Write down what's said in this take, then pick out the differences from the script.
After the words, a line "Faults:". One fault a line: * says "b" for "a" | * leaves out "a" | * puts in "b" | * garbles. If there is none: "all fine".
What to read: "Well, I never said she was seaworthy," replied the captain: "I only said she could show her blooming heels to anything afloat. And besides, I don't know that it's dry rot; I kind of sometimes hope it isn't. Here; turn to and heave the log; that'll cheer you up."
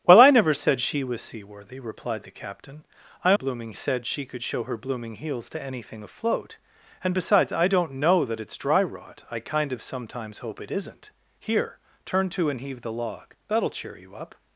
"Well, I never said she was seaworthy," replied the captain: "I blooming said she could show her blooming heels to anything afloat. And besides, I don't know that it's dry rot; I kind of sometimes hope it isn't. Here; turn to and heave the log; that'll cheer you up."
Faults:
* says "blooming" for "only"